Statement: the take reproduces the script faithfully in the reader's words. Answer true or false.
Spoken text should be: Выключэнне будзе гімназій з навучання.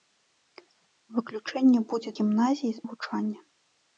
true